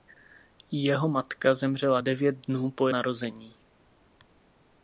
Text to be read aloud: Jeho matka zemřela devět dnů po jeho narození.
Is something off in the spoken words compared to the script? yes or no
yes